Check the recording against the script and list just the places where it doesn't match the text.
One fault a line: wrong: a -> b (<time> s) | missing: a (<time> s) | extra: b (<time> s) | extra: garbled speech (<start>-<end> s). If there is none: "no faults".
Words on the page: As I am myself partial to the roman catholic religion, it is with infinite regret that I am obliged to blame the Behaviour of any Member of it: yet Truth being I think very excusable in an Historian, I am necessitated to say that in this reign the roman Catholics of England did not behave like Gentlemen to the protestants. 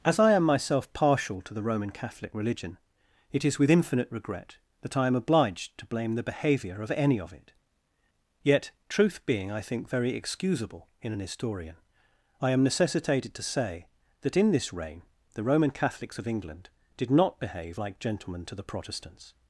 missing: Member (7.2 s)